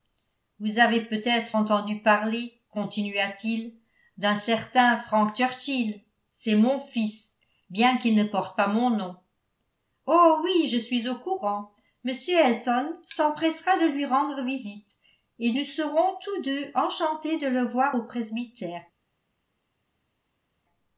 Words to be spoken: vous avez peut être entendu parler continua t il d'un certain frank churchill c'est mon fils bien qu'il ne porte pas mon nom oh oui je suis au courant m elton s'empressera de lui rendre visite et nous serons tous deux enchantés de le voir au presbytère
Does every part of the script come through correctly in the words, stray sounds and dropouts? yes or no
yes